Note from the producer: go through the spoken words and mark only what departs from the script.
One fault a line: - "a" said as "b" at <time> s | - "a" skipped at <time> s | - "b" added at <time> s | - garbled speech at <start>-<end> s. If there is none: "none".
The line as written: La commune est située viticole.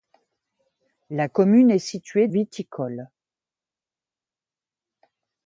none